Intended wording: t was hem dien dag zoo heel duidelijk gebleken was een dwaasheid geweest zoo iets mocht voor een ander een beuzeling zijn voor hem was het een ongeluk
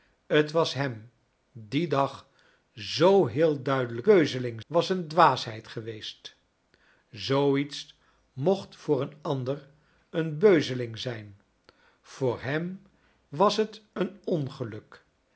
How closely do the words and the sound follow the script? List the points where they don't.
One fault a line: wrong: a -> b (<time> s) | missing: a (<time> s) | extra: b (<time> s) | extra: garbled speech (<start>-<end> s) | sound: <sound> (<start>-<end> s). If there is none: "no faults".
wrong: gebleken -> beuzeling (4.0 s)